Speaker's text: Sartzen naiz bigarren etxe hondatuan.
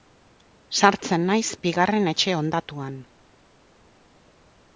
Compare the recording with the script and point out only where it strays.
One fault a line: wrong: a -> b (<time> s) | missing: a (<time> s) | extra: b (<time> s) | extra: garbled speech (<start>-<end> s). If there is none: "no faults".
no faults